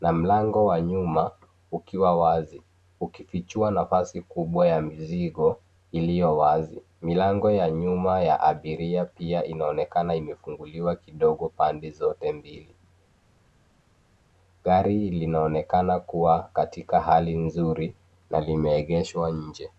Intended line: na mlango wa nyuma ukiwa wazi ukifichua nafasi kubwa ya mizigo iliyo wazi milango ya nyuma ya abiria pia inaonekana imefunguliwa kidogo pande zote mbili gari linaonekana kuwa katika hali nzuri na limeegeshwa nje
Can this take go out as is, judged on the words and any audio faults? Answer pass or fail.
pass